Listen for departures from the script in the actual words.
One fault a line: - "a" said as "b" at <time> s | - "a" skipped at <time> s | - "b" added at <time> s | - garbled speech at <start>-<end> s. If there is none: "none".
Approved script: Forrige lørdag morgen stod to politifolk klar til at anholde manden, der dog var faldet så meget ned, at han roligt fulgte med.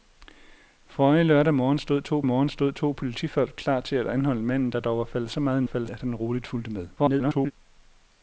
- "morgen stod to" added at 2.2 s
- "ned" said as "faldet" at 5.6 s
- garbled speech at 7.0-7.5 s